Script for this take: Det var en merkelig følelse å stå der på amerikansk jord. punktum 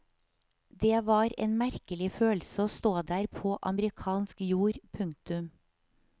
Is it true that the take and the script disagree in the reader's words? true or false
false